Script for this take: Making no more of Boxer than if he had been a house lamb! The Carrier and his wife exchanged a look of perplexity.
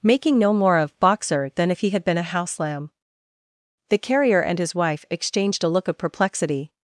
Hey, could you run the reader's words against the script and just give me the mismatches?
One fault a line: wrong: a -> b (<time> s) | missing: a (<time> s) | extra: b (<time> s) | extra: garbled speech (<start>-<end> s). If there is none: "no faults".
no faults